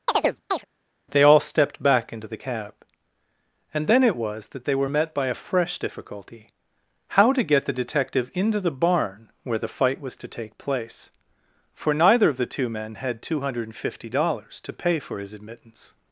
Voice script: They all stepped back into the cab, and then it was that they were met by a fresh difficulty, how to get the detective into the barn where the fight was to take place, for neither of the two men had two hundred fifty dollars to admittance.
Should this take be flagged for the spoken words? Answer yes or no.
yes